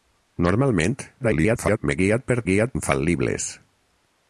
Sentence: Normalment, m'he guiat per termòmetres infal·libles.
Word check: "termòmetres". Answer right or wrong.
wrong